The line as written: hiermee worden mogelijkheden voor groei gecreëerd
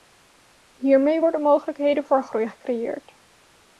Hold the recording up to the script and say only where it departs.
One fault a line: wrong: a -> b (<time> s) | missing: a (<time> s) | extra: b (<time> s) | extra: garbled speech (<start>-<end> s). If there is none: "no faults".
no faults